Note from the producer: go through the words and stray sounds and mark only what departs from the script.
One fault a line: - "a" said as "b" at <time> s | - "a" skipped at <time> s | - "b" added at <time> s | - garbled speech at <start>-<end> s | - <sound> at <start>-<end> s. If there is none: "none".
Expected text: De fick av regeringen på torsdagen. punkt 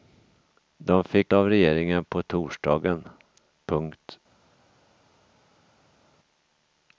none